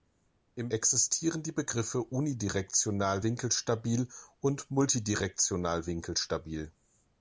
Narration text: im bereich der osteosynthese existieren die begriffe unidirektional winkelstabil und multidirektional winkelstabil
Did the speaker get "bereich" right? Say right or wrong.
wrong